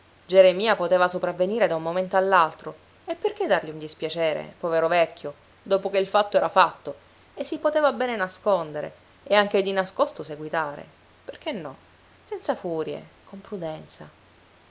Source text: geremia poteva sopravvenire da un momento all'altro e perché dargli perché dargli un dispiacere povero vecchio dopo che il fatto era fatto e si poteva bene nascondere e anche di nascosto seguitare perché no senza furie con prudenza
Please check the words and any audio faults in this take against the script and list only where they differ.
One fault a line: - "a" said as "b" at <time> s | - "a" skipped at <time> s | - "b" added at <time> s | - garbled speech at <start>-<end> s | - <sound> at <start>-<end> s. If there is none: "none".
- "perché dargli" skipped at 3.7 s